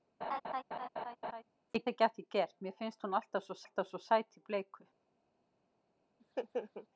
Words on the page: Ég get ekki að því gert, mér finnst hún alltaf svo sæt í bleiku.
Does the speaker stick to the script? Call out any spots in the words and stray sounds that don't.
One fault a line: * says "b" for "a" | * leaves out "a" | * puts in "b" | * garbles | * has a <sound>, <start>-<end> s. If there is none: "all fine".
* has a laugh, 0.2-1.4 s
* leaves out "get"
* puts in "alltaf svo"
* has a laugh, 6.2-6.9 s